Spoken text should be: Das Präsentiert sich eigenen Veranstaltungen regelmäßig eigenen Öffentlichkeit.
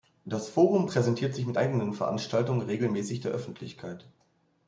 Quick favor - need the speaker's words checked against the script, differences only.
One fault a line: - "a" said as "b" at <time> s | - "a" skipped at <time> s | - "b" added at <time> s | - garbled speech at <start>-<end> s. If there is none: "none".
- "Forum" added at 0.5 s
- "mit" added at 1.5 s
- "eigenen" said as "der" at 3.2 s